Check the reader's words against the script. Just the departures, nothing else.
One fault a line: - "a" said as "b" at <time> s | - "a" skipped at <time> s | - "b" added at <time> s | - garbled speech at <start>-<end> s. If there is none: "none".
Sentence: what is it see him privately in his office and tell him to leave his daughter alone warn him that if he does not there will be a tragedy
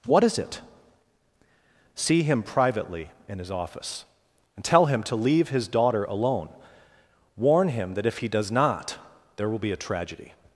none